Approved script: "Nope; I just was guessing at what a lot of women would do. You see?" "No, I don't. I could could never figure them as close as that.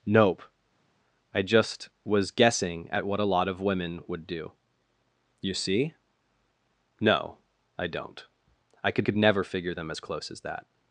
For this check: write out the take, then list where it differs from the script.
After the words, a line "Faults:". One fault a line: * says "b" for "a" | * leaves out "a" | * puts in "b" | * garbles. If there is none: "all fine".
"Nope; I just was guessing at what a lot of women would do. You see?" "No, I don't. I could could never figure them as close as that.
Faults:
all fine